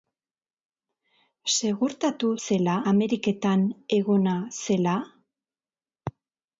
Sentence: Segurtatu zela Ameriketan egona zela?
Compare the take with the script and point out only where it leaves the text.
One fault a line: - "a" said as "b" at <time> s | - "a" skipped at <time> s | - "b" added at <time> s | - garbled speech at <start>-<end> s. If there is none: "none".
none